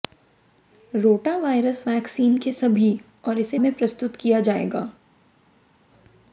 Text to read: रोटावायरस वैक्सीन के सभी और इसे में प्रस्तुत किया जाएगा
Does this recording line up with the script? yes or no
yes